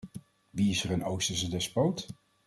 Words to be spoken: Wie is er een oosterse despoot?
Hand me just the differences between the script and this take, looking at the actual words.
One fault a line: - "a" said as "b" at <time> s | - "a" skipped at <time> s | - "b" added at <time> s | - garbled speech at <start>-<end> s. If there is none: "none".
none